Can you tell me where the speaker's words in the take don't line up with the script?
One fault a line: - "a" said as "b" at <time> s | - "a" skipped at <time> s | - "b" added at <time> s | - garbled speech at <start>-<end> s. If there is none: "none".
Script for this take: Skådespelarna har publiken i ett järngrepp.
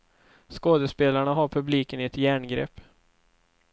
none